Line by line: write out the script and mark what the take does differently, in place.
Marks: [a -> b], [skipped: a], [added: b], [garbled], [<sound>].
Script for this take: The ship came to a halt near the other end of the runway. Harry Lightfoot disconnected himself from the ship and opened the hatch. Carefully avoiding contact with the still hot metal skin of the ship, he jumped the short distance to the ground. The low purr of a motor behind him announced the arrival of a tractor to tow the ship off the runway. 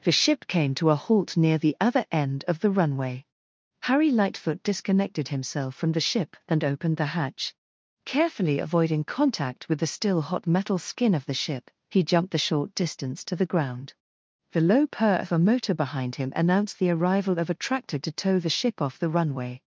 The ship came to a halt near the other end of the runway. Harry Lightfoot disconnected himself from the ship and opened the hatch. Carefully avoiding contact with the still hot metal skin of the ship, he jumped the short distance to the ground. The low purr of a motor behind him announced the arrival of a tractor to tow the ship off the runway.